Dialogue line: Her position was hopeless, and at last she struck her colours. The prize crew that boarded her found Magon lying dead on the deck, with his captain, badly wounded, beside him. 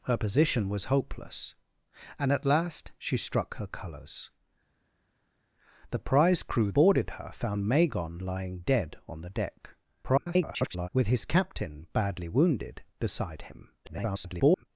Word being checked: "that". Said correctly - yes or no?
no